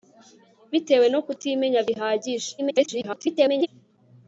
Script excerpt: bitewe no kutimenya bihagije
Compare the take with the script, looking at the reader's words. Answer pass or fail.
fail